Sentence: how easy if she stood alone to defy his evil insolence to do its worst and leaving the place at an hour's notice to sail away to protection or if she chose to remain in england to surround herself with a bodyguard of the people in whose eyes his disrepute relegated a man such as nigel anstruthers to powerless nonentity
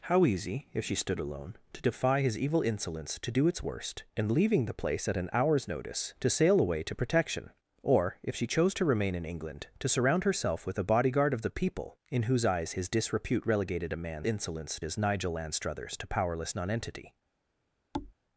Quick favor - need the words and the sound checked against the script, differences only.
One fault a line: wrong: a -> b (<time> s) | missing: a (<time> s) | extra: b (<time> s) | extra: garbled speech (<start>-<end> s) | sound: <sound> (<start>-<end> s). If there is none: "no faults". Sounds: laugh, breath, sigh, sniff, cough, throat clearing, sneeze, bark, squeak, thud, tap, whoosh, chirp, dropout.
wrong: such -> insolence (14.2 s)
sound: thud (17.9-18.1 s)